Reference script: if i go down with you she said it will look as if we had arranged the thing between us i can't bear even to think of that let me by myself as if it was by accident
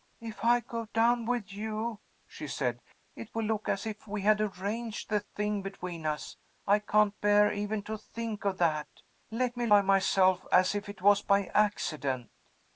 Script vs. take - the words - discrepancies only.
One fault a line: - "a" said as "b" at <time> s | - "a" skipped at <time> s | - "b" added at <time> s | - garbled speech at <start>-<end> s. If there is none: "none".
none